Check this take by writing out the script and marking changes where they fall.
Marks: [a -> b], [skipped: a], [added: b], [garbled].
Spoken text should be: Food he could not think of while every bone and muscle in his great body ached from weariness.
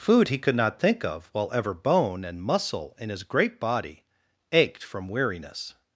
Food he could not think of while [every -> ever] bone and muscle in his great body ached from weariness.